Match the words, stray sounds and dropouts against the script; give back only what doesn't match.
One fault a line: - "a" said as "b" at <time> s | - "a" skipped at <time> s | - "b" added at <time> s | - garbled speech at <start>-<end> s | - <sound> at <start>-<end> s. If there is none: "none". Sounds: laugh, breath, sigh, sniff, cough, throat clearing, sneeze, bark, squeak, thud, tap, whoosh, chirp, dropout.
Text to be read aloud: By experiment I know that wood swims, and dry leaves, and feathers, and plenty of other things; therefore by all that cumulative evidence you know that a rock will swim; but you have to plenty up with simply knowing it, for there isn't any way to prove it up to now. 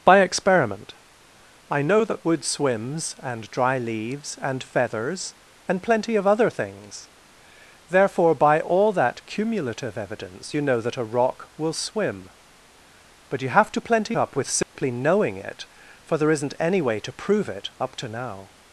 - dropout at 14.6-14.8 s